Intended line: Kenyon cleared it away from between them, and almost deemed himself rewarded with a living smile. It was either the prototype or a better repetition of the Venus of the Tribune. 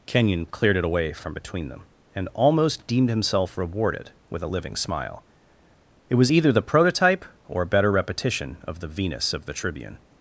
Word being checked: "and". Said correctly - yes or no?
yes